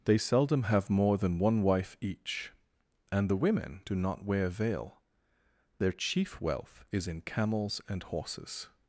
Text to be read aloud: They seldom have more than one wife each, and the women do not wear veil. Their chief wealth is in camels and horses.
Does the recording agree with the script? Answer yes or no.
yes